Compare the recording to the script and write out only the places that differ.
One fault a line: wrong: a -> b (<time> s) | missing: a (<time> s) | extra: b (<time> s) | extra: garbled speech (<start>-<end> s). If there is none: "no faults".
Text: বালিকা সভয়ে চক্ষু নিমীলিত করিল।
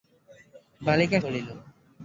missing: সভয়ে চক্ষু নিমীলিত (1.2 s)